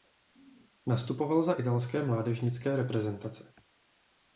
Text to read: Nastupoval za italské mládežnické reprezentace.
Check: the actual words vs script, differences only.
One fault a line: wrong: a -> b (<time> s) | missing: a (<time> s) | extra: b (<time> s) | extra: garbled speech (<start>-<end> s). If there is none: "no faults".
no faults